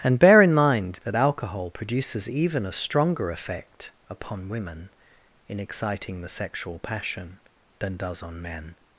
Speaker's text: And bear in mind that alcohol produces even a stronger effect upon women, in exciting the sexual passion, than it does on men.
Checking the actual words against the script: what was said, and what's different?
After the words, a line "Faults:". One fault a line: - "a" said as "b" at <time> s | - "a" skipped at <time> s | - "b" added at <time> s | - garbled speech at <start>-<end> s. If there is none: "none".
And bear in mind that alcohol produces even a stronger effect upon women, in exciting the sexual passion, than does on men.
Faults:
- "it" skipped at 8.0 s